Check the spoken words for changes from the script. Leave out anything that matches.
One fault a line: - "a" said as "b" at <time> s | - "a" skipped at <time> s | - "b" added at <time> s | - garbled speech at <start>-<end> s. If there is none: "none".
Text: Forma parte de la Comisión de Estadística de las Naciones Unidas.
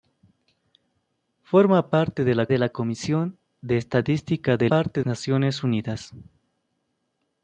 - "de la" added at 2.5 s
- "las" said as "parte" at 4.7 s